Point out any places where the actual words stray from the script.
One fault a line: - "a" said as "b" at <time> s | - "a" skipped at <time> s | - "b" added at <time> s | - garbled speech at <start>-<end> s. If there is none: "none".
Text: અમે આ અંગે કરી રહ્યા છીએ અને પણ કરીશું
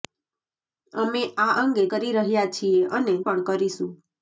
none